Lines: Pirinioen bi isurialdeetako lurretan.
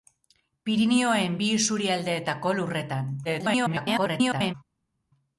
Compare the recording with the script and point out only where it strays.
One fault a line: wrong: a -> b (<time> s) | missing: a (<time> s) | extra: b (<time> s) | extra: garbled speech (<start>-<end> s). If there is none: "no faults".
extra: garbled speech (3.2-4.5 s)